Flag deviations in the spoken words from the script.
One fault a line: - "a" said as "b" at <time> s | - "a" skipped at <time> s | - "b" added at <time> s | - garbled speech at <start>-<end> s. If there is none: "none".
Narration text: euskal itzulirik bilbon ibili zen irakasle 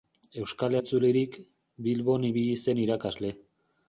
none